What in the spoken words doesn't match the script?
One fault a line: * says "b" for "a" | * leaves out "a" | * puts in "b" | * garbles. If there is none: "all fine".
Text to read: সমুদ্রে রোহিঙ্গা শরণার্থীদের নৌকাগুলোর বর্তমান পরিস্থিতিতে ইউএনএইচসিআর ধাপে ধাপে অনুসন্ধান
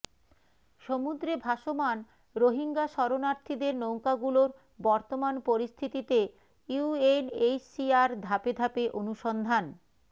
* puts in "ভাসমান"